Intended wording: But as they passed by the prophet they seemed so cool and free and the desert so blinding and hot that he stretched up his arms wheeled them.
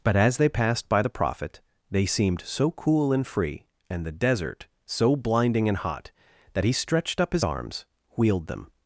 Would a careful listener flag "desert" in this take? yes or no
no